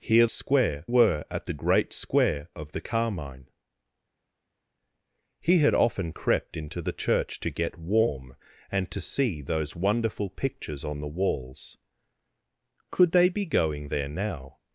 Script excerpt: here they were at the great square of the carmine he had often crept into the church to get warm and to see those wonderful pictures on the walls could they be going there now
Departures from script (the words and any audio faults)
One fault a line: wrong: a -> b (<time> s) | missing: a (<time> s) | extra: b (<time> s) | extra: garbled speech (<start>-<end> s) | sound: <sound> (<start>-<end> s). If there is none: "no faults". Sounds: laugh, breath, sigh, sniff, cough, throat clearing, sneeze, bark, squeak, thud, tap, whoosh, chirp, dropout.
wrong: they -> square (0.3 s)